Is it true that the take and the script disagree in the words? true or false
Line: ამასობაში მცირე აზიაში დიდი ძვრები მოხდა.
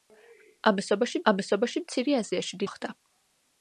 true